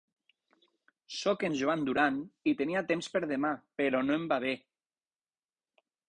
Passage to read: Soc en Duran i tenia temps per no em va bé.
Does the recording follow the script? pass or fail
fail